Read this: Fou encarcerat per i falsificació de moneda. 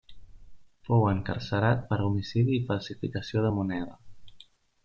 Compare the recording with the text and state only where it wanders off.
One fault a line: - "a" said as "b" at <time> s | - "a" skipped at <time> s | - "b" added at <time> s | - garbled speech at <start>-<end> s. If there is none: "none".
- "homicidi" added at 2.1 s